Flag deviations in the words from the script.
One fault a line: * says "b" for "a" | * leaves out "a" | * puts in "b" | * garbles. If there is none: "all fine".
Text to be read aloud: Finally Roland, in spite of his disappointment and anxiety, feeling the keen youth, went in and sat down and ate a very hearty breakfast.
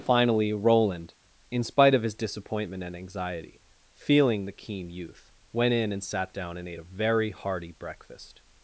all fine